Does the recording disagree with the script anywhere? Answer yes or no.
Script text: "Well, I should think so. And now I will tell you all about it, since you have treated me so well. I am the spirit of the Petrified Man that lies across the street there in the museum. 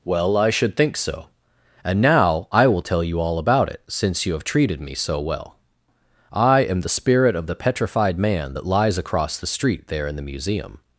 no